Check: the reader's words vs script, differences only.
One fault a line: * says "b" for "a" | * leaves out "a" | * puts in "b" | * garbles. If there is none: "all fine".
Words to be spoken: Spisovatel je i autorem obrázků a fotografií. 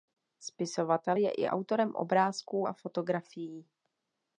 all fine